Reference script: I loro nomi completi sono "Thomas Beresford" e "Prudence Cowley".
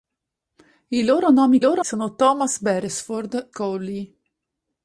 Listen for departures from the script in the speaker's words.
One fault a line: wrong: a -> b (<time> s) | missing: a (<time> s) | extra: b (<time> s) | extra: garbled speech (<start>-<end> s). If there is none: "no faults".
wrong: completi -> loro (1.6 s)
missing: e Prudence (3.5 s)